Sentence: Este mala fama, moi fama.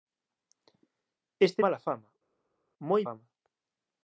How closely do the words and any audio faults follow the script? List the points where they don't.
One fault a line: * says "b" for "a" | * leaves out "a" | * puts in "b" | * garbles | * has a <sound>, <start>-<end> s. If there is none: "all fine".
all fine